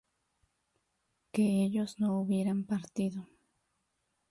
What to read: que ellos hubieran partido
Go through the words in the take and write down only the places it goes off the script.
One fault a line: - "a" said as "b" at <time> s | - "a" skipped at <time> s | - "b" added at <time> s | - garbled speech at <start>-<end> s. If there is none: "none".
- "no" added at 2.0 s